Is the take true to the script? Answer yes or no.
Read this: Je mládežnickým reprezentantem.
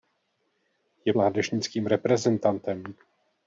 yes